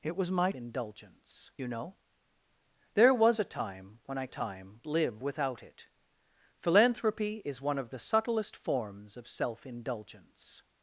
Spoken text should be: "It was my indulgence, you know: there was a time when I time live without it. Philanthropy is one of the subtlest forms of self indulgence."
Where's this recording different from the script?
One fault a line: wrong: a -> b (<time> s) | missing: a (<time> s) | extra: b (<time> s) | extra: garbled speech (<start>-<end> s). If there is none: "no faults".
no faults